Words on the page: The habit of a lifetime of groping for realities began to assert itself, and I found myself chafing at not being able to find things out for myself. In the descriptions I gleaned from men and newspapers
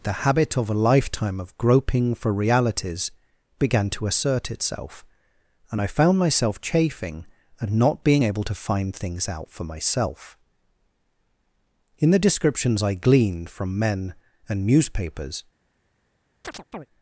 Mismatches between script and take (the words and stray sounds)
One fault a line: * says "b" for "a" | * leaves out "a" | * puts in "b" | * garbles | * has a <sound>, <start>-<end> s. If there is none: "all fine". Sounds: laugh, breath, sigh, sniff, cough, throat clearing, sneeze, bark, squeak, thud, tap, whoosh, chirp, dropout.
* has a chirp, 16.4-16.9 s